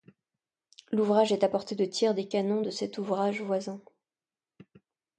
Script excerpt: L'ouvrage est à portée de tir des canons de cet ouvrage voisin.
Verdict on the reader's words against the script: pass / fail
pass